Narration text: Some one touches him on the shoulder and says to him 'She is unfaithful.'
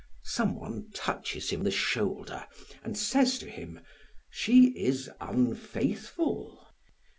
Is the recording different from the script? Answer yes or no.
yes